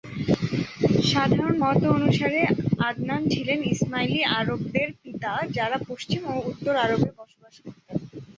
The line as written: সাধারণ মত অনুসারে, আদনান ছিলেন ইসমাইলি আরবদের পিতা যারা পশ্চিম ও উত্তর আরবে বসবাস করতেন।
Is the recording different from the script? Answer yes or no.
no